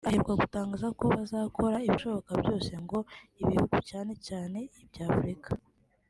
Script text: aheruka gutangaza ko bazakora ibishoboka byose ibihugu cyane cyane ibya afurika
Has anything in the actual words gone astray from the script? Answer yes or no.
yes